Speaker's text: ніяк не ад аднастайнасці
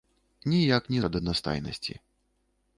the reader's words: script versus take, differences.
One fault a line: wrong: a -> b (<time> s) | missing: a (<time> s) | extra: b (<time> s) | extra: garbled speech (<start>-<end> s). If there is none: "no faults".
no faults